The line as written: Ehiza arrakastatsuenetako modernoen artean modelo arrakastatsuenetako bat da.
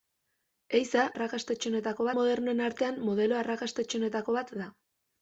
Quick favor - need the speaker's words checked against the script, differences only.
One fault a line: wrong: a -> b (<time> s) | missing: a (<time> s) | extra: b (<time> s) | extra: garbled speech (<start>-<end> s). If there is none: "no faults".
no faults